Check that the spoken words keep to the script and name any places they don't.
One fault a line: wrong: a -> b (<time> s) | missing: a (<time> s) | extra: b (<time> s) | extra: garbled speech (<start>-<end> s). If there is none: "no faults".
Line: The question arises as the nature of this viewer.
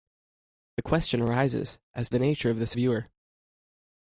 no faults